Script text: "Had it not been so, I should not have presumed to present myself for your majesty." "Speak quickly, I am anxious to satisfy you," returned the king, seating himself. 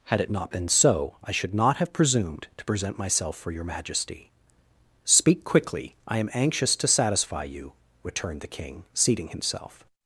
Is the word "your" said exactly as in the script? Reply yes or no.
yes